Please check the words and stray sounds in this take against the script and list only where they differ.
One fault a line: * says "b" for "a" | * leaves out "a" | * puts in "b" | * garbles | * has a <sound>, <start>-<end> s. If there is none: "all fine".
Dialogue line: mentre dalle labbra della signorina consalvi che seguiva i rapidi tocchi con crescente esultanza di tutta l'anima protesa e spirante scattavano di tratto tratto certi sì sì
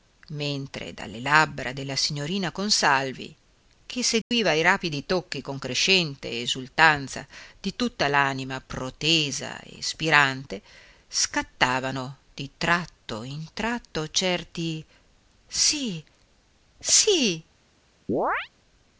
* has a dropout, 4.2-4.3 s
* puts in "in"
* has a chirp, 18.1-18.5 s